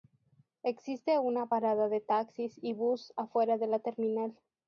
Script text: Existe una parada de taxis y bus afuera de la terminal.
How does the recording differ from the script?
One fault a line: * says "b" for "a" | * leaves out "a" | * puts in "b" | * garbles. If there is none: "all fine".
all fine